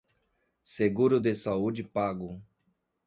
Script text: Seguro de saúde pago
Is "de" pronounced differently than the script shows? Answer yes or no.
no